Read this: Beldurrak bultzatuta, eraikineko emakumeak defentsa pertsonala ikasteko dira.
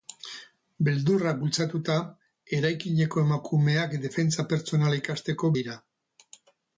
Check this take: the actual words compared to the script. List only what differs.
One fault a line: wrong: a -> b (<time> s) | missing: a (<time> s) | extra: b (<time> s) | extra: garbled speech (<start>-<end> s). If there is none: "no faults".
no faults